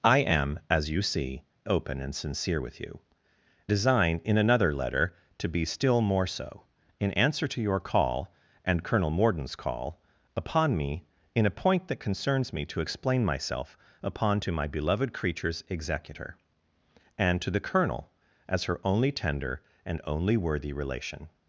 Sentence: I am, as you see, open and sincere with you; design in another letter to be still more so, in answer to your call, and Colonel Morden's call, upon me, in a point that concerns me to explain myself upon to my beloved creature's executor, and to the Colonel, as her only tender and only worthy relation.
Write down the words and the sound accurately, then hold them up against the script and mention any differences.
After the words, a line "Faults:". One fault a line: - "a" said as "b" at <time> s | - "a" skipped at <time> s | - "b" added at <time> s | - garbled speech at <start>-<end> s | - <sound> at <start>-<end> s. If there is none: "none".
I am, as you see, open and sincere with you; design in another letter to be still more so, in answer to your call, and Colonel Morden's call, upon me, in a point that concerns me to explain myself upon to my beloved creature's executor, and to the Colonel, as her only tender and only worthy relation.
Faults:
none